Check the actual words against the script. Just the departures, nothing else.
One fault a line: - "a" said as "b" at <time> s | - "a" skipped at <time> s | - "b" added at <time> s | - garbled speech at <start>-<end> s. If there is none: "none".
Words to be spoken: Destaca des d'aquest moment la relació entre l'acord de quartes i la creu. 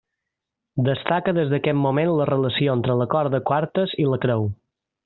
none